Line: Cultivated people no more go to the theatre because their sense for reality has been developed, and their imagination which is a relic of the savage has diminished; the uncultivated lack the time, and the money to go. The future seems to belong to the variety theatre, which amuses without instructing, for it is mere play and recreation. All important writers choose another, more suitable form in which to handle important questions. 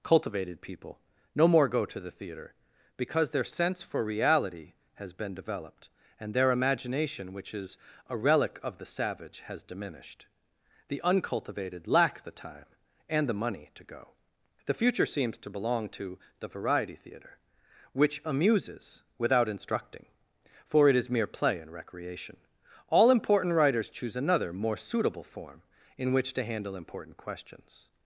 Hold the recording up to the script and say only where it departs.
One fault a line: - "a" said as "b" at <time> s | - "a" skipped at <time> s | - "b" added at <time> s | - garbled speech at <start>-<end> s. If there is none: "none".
none